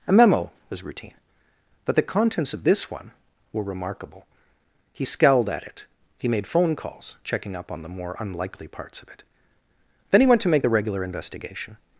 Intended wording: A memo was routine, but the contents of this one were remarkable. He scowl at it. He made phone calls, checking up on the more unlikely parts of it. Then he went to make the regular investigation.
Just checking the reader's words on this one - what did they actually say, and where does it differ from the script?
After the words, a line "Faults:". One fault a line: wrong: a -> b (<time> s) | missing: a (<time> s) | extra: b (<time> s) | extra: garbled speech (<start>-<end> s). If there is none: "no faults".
A memo was routine, but the contents of this one were remarkable. He scowled at it. He made phone calls, checking up on the more unlikely parts of it. Then he went to make the regular investigation.
Faults:
wrong: scowl -> scowled (5.0 s)